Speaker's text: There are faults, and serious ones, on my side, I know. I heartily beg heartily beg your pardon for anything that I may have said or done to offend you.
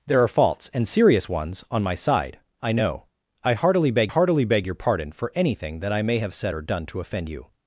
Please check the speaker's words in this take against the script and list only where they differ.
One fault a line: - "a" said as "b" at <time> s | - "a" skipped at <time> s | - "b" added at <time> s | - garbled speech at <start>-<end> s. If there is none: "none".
none